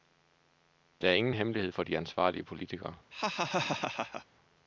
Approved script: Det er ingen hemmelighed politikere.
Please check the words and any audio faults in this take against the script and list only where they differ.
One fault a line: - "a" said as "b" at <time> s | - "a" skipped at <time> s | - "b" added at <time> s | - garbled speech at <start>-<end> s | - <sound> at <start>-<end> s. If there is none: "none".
- "for de ansvarlige" added at 1.7 s
- laugh at 3.1-4.3 s